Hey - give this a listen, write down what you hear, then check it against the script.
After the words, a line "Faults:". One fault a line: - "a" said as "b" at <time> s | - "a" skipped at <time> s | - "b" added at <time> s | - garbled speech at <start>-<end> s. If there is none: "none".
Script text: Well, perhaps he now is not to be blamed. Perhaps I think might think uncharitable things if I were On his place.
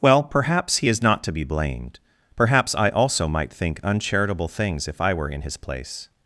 Well, perhaps he is not to be blamed. Perhaps I also might think uncharitable things if I were In his place.
Faults:
- "now" skipped at 0.9 s
- "think" said as "also" at 2.9 s
- "On" said as "In" at 5.3 s